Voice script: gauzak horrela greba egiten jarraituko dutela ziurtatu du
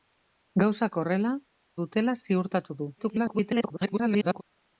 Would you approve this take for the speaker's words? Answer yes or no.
no